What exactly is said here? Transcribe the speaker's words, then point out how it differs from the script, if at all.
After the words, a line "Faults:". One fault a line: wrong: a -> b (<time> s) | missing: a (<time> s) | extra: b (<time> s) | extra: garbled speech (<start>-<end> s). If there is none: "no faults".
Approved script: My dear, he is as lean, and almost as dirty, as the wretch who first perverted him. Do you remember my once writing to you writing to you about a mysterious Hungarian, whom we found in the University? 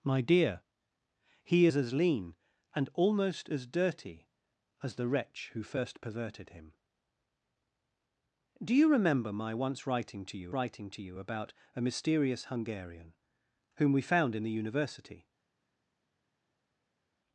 My dear, he is as lean, and almost as dirty, as the wretch who first perverted him. Do you remember my once writing to you writing to you about a mysterious Hungarian, whom we found in the University?
Faults:
no faults